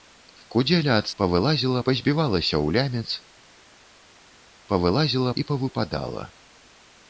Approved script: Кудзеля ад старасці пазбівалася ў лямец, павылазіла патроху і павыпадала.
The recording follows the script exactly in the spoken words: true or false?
false